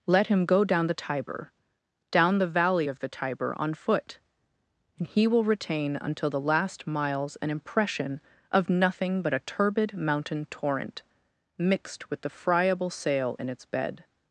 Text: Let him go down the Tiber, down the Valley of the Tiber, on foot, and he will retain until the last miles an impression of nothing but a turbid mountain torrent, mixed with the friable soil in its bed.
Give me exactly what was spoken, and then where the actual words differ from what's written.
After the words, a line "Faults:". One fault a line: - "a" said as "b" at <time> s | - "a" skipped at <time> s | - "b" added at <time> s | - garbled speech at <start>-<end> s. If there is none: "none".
Let him go down the Tiber, down the Valley of the Tiber, on foot, and he will retain until the last miles an impression of nothing but a turbid mountain torrent, mixed with the friable sail in its bed.
Faults:
- "soil" said as "sail" at 12.9 s